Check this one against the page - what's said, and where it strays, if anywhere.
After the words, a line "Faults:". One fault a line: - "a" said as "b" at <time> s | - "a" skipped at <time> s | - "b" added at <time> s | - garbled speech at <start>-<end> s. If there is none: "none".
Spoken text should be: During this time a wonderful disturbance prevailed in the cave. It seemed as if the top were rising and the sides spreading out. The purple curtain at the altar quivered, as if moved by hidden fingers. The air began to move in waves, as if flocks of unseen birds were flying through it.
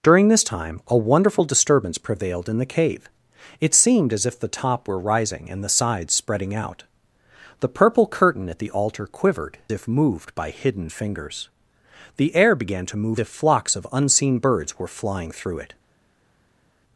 During this time a wonderful disturbance prevailed in the cave. It seemed as if the top were rising and the sides spreading out. The purple curtain at the altar quivered, if moved by hidden fingers. The air began to move if flocks of unseen birds were flying through it.
Faults:
- "as" skipped at 9.6 s
- "in waves as" skipped at 13.2 s